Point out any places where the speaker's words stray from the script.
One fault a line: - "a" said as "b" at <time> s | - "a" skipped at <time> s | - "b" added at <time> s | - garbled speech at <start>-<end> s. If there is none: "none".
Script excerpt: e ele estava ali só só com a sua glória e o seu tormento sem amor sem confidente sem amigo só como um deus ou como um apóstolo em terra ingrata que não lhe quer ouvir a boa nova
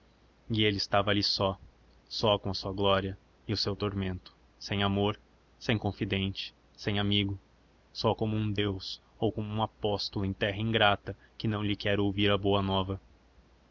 none